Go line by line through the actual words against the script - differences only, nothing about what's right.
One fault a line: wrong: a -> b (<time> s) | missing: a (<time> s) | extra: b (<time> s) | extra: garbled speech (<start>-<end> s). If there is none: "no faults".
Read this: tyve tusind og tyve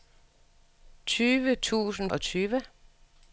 no faults